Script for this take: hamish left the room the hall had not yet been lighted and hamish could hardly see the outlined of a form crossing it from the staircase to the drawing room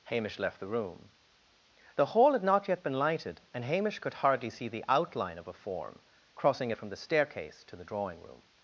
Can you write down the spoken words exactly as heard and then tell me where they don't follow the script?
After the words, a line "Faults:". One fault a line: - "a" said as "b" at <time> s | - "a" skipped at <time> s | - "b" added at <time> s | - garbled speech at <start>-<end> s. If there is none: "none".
hamish left the room the hall had not yet been lighted and hamish could hardly see the outline of a form crossing it from the staircase to the drawing room
Faults:
- "outlined" said as "outline" at 4.9 s